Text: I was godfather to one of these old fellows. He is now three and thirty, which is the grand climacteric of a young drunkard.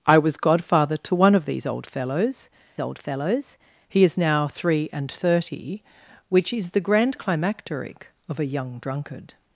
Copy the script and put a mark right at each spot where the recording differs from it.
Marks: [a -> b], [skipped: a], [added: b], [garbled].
I was godfather to one of these old fellows. [added: old fellows] He is now three and thirty, which is the grand climacteric of a young drunkard.